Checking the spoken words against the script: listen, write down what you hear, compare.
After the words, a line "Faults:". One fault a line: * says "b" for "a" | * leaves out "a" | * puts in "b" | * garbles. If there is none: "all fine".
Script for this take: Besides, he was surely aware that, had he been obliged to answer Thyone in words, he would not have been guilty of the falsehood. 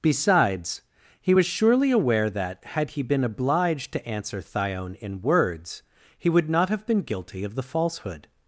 Besides, he was surely aware that, had he been obliged to answer Thyone in words, he would not have been guilty of the falsehood.
Faults:
all fine